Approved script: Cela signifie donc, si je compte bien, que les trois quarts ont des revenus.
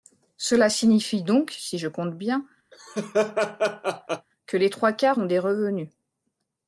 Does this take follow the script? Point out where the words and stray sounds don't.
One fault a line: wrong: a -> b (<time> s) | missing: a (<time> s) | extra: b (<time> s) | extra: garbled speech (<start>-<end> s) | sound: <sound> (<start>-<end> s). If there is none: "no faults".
sound: laugh (2.7-4.3 s)